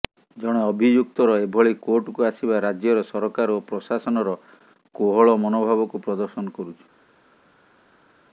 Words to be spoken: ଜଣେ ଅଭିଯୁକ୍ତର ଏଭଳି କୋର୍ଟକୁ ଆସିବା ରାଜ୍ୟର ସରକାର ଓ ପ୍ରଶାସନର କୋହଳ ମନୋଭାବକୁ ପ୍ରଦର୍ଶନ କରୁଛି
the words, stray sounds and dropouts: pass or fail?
pass